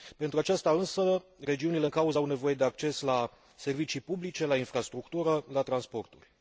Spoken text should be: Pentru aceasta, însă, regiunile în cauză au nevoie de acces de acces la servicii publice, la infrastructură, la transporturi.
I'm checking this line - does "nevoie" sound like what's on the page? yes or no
yes